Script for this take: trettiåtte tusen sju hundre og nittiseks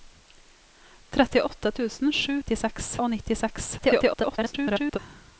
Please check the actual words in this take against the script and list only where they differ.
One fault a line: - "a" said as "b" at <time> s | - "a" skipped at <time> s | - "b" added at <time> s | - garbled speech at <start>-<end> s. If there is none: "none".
- "hundre" said as "nittiseks" at 2.4 s
- garbled speech at 3.8-5.0 s